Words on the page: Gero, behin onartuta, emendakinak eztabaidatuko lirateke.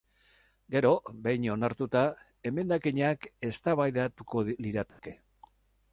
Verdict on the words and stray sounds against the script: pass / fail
fail